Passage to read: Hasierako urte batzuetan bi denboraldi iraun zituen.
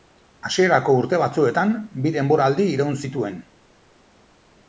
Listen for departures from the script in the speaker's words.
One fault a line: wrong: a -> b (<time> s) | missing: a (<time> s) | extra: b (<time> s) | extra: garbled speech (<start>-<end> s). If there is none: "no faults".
no faults